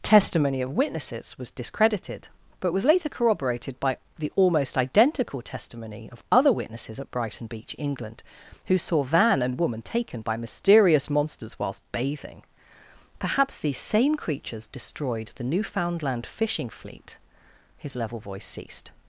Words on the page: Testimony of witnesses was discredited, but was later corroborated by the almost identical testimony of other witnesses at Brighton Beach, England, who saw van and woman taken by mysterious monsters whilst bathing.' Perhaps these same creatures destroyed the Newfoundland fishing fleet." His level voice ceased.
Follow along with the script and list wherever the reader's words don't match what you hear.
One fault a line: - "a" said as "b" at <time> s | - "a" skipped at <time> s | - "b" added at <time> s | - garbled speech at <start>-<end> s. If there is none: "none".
none